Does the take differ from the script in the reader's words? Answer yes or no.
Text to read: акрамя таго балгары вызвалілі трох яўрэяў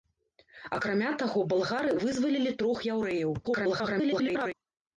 yes